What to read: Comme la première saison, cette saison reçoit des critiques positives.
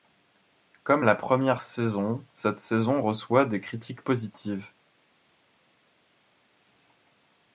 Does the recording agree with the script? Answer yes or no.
yes